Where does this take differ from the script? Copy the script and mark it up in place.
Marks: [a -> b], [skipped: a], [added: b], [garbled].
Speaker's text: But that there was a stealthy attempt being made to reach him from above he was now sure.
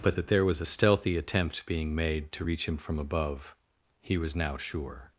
But that there was a stealthy attempt being made to reach him from above he was now sure.